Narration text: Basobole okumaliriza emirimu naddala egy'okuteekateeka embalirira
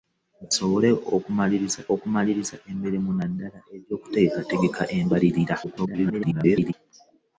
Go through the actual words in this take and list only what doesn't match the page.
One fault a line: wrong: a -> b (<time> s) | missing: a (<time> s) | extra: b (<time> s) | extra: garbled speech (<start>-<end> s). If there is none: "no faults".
extra: okumaliriza (1.9 s)
extra: garbled speech (5.6-6.7 s)